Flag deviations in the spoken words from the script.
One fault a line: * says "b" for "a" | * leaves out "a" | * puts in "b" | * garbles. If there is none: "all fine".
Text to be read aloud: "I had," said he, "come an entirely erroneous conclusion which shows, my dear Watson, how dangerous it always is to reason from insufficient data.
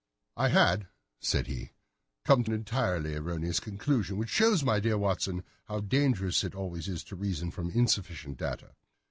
all fine